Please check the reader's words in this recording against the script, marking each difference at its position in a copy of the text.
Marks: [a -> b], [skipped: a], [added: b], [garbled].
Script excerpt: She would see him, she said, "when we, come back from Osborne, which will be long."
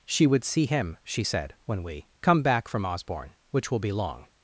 She would see him, she said, "when we, come back from Osborne, which will be long."